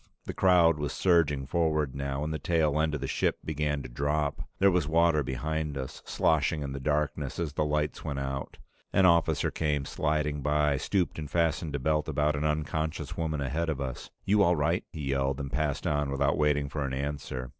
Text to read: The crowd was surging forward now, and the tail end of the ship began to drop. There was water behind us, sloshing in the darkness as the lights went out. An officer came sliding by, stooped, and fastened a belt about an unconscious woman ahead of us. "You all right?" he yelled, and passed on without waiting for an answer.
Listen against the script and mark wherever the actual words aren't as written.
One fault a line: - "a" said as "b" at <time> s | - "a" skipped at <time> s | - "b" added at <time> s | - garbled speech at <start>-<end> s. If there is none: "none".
none